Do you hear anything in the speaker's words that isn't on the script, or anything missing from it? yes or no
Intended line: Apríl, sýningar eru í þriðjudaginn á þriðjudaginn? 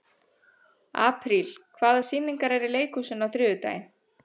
yes